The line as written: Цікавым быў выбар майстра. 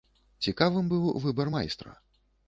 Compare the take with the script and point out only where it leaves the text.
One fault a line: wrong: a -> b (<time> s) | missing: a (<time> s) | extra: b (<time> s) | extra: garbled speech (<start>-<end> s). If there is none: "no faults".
no faults